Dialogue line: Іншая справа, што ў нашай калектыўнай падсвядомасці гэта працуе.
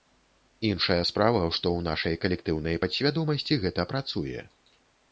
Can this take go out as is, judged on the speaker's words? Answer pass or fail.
pass